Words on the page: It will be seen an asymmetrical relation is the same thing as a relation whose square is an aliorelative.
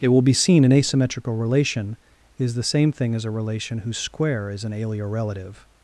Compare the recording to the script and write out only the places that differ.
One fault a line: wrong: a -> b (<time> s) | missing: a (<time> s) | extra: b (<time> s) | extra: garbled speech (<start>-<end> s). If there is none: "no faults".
no faults